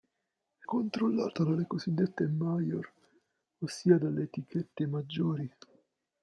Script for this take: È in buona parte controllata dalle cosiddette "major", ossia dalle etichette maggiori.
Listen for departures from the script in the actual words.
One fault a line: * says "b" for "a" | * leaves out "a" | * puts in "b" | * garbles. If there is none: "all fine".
* leaves out "in buona parte"